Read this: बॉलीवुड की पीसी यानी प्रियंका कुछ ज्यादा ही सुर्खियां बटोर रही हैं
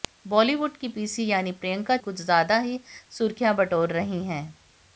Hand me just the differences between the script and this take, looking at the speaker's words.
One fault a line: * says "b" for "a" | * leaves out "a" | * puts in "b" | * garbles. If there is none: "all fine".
all fine